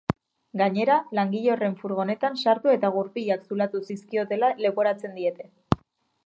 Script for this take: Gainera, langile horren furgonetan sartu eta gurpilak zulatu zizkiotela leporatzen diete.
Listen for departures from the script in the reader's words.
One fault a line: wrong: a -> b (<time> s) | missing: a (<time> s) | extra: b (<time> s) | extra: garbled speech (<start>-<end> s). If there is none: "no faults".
no faults